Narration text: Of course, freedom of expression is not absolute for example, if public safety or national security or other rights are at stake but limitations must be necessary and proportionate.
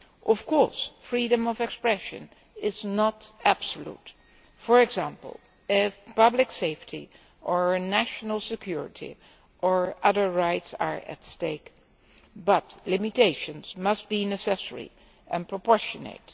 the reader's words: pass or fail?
pass